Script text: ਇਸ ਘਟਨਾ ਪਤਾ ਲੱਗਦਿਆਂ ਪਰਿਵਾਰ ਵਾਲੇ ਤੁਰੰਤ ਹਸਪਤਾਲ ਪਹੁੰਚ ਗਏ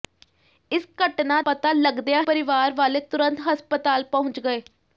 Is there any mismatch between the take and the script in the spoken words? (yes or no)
no